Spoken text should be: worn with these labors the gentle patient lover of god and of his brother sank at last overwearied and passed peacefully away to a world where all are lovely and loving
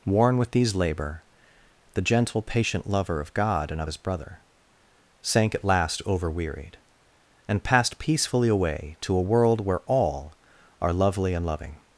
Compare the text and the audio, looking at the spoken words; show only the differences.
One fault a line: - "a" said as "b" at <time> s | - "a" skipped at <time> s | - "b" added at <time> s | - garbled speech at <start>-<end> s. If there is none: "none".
- "labors" said as "labor" at 0.7 s